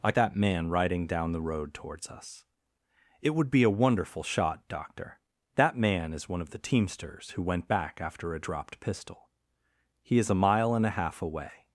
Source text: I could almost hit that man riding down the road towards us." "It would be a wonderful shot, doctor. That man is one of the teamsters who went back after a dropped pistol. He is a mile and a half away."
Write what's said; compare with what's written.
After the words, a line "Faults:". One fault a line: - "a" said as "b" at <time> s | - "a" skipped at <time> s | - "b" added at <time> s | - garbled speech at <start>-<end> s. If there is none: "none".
I that man riding down the road towards us." "It would be a wonderful shot, doctor. That man is one of the teamsters who went back after a dropped pistol. He is a mile and a half away."
Faults:
- "could almost hit" skipped at 0.1 s